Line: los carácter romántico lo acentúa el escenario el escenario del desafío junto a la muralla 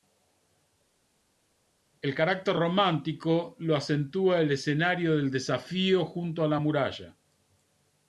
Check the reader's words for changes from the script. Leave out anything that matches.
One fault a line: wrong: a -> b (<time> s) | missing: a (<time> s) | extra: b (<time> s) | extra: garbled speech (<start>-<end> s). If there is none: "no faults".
wrong: los -> el (2.0 s)
missing: el escenario (5.2 s)